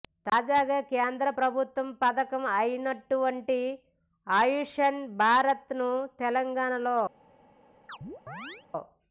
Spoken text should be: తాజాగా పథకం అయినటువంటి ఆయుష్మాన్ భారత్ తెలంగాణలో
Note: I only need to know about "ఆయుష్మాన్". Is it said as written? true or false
true